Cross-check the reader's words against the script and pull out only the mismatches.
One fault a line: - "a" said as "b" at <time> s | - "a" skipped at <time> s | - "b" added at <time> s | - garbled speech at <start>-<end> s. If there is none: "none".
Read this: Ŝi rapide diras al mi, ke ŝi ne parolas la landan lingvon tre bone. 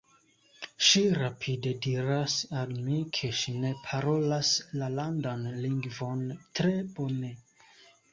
none